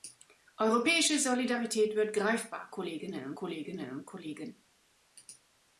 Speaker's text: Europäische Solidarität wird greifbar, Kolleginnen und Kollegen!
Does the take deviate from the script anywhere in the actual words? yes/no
yes